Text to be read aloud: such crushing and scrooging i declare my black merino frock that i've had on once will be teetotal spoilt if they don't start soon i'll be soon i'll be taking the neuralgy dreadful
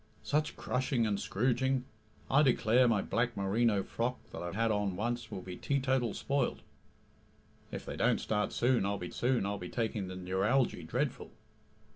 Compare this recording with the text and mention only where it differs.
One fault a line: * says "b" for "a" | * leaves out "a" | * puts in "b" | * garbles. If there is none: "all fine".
all fine